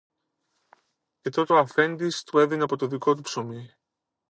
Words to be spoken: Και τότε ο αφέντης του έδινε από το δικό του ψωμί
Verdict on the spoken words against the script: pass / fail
pass